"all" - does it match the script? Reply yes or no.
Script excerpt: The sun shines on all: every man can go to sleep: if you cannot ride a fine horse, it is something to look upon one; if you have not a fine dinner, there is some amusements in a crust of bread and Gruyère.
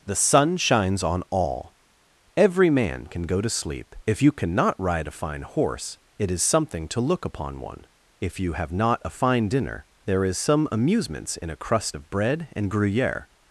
yes